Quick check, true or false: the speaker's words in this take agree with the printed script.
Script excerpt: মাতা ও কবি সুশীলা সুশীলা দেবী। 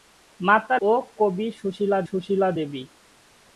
true